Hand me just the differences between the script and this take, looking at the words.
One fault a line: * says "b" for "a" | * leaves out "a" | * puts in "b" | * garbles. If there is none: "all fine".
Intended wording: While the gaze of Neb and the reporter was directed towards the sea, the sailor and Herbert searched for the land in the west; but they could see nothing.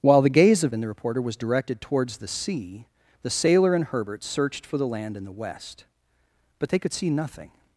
* leaves out "Neb"